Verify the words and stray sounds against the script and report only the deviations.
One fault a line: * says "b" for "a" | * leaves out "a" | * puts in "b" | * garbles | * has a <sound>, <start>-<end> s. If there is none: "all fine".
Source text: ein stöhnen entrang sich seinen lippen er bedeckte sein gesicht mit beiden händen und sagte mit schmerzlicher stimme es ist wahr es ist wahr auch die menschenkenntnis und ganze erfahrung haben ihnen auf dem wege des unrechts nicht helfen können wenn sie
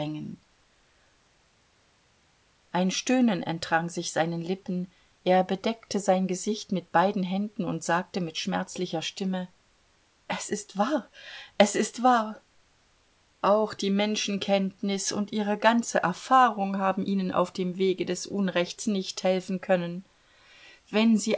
* puts in "ihre"